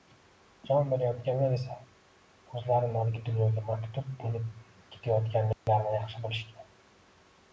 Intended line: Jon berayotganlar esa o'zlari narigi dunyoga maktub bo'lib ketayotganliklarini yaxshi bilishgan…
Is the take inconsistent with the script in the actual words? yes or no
no